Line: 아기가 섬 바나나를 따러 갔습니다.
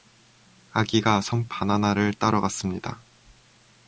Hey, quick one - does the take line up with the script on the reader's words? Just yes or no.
yes